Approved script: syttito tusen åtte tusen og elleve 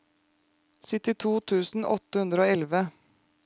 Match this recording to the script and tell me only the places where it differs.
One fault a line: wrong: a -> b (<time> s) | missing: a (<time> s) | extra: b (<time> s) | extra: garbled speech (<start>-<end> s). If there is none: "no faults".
wrong: tusen -> hundre (2.2 s)